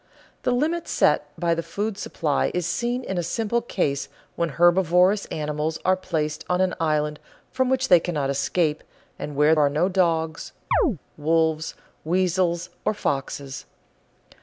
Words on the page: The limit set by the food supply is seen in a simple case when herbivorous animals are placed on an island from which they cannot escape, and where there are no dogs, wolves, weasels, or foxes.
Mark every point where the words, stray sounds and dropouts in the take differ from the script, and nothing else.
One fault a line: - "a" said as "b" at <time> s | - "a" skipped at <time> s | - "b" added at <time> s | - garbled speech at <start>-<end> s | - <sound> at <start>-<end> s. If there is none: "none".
- "there" skipped at 9.6 s
- chirp at 10.7-11.0 s